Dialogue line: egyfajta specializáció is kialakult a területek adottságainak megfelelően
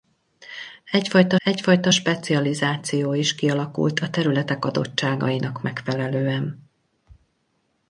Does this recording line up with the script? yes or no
no